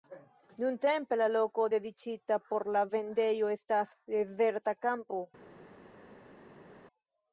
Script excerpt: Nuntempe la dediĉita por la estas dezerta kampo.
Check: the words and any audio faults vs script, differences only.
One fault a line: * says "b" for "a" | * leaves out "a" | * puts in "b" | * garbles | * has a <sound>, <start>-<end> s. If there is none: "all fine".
* puts in "loko"
* puts in "vendejo"